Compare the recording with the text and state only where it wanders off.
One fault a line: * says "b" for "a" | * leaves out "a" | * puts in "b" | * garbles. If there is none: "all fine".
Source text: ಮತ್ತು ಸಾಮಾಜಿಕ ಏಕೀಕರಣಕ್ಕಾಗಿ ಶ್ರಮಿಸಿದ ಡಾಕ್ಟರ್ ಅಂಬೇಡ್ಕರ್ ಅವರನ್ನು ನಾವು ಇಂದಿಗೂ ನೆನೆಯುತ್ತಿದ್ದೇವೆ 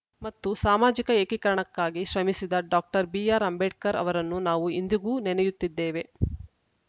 * puts in "ಬಿಆರ್"